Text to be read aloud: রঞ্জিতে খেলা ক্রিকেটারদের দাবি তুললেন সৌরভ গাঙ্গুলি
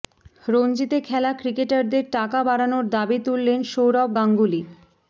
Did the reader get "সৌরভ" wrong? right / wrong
right